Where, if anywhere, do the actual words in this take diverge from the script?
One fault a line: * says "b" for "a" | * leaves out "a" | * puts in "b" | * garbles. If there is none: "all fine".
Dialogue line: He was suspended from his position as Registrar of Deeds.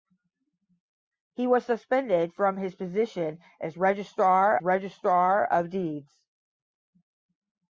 * puts in "Registrar"